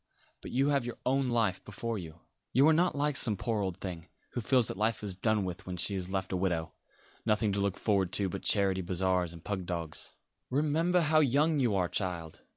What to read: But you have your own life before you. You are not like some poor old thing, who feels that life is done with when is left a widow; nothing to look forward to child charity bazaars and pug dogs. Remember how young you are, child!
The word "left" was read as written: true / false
true